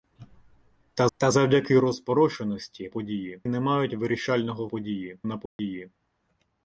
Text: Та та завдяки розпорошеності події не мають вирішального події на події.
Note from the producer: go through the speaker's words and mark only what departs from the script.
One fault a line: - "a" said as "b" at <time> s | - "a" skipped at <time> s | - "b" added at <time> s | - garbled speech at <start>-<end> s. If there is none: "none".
none